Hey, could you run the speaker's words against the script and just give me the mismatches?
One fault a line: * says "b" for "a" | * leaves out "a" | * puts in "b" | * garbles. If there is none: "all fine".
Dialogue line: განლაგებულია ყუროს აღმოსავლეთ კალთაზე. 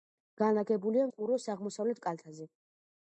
all fine